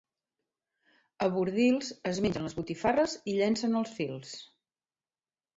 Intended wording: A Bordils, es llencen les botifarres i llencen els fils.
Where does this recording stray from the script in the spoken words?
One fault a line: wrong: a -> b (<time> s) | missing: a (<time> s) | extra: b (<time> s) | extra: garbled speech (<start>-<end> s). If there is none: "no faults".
wrong: llencen -> mengen (2.3 s)